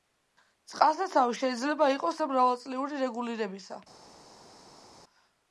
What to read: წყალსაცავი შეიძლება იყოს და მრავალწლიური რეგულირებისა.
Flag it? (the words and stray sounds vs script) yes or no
no